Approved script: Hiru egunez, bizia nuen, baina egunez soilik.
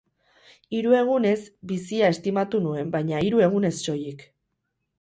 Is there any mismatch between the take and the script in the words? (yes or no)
yes